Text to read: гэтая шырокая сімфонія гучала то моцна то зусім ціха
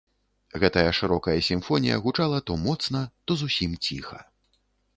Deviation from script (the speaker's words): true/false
false